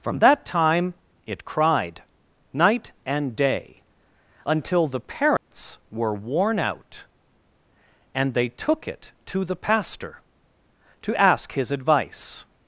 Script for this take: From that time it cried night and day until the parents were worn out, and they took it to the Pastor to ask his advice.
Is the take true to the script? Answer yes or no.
yes